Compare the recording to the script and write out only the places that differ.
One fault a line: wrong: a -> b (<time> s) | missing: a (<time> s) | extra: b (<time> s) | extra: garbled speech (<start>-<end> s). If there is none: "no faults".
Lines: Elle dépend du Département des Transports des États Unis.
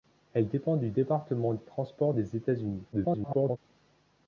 extra: garbled speech (2.9-3.6 s)